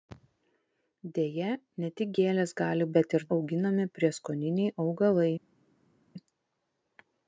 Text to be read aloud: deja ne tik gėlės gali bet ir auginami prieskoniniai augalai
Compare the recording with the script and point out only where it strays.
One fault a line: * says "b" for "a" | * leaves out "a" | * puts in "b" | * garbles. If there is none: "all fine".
all fine